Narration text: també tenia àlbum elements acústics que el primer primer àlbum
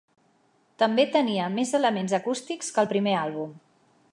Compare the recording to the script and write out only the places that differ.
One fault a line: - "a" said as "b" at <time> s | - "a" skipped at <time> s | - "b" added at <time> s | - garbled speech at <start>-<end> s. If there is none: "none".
- "àlbum" said as "més" at 1.6 s
- "primer" skipped at 3.2 s